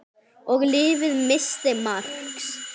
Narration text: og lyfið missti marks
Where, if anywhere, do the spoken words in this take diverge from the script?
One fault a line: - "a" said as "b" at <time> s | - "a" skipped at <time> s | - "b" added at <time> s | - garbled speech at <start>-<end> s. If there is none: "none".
none